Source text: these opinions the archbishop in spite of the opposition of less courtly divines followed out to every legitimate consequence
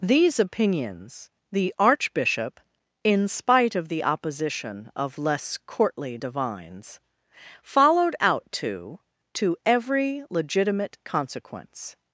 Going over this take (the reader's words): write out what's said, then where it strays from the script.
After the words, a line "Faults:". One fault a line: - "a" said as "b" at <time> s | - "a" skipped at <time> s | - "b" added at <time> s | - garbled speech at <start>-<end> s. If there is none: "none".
these opinions the archbishop in spite of the opposition of less courtly divines followed out to to every legitimate consequence
Faults:
- "to" added at 9.3 s